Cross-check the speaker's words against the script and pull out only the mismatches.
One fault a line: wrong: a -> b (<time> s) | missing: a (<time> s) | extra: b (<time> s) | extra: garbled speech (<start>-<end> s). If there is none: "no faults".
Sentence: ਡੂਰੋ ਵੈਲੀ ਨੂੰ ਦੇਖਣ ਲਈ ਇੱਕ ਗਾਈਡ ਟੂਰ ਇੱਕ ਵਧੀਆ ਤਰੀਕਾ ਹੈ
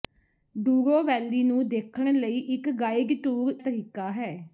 missing: ਇੱਕ ਵਧੀਆ (3.5 s)